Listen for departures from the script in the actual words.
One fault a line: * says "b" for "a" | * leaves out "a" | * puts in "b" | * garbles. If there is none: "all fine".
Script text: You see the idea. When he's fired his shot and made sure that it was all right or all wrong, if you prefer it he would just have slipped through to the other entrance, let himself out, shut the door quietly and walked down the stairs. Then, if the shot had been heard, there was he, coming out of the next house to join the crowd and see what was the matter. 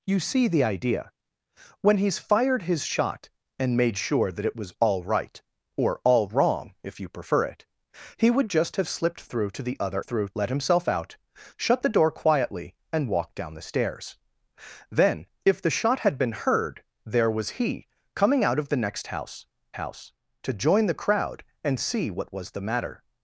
* says "through" for "entrance"
* puts in "house"